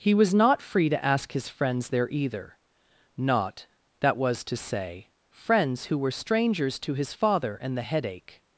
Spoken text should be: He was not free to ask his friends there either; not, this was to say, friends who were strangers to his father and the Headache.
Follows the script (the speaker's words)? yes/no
no